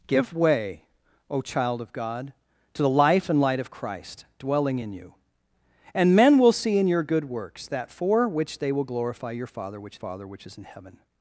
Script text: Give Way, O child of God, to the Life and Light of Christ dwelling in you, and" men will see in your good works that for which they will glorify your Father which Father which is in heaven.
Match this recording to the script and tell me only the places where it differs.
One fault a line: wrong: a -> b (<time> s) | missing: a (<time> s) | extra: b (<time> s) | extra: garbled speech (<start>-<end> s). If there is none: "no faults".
no faults